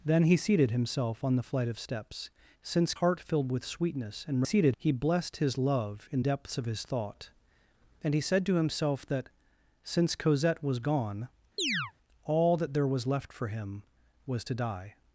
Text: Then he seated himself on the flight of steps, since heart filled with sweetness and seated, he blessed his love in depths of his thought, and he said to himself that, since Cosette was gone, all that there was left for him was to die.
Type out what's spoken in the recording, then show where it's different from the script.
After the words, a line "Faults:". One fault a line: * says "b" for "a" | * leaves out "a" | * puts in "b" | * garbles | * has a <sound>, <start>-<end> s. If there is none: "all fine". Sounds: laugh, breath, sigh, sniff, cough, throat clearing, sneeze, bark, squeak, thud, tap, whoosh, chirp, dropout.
Then he seated himself on the flight of steps, since heart filled with sweetness and seated, he blessed his love in depths of his thought, and he said to himself that, since Cosette was gone, all that there was left for him was to die.
Faults:
* has a chirp, 11.6-11.9 s